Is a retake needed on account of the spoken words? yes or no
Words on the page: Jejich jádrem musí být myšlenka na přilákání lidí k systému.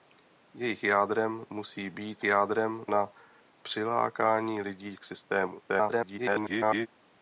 yes